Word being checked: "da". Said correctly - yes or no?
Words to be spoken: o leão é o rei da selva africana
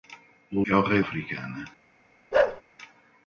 no